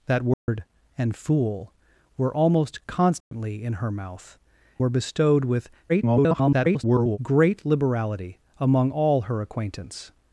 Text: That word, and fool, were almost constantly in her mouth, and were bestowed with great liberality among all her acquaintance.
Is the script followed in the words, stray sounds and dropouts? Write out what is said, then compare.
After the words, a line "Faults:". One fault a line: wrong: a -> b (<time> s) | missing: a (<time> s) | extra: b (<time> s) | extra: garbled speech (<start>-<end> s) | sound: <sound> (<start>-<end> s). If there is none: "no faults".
That word, and fool, were almost constantly in her mouth, were bestowed with [garbled] great liberality among all her acquaintance.
Faults:
sound: dropout (0.3-0.5 s)
sound: dropout (3.2-3.3 s)
missing: and (4.4 s)
extra: garbled speech (5.9-7.2 s)